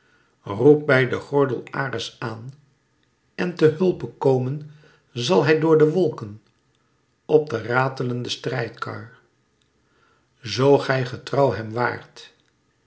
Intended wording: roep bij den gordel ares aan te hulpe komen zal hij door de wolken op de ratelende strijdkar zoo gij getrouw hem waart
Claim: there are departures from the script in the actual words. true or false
true